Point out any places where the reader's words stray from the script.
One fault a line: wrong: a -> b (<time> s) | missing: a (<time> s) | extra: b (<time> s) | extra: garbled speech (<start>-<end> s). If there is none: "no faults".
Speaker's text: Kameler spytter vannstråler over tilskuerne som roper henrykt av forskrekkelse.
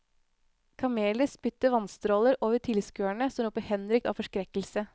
no faults